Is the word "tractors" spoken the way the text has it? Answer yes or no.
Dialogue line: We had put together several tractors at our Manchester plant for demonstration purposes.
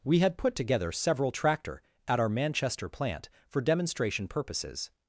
no